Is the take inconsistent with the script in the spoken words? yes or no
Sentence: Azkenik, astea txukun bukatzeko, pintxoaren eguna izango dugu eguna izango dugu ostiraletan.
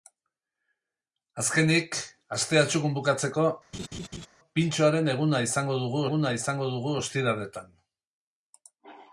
no